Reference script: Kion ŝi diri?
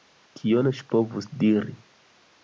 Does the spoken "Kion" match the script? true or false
true